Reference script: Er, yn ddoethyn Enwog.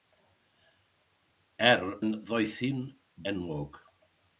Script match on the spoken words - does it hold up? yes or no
yes